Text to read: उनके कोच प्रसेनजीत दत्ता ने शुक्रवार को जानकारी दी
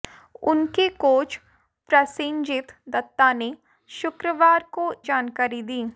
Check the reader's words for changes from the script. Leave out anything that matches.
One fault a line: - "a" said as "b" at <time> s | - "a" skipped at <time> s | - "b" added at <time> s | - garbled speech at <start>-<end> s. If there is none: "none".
none